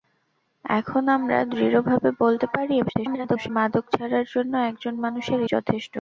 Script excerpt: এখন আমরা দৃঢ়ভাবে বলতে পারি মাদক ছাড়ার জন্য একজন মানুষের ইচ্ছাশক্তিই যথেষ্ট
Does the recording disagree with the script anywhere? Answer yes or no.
yes